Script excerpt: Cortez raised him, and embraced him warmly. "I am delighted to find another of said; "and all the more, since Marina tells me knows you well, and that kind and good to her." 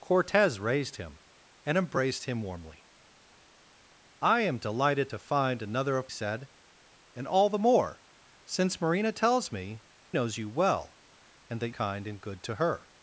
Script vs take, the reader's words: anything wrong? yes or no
no